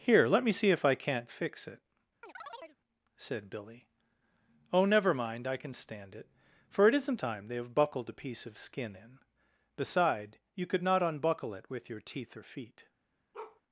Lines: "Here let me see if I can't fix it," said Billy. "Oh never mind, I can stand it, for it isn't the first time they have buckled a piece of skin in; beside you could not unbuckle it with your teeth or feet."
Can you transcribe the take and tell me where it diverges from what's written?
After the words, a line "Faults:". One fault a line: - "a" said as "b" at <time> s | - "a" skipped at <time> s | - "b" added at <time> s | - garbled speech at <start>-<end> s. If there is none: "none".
"Here let me see if I can't fix it," said Billy. "Oh never mind, I can stand it, for it isn't time they have buckled a piece of skin in; beside you could not unbuckle it with your teeth or feet."
Faults:
- "the first" skipped at 7.2 s